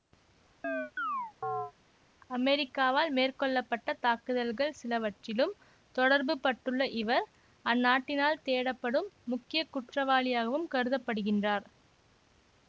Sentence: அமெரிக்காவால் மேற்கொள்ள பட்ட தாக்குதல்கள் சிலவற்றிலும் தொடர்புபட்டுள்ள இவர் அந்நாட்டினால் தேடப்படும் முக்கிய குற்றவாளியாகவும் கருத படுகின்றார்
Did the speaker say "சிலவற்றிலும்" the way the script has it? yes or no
yes